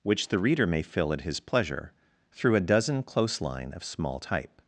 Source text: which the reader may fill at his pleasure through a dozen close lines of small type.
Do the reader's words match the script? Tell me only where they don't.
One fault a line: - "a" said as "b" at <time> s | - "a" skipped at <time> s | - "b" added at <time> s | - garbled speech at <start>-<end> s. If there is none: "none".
- "lines" said as "line" at 3.4 s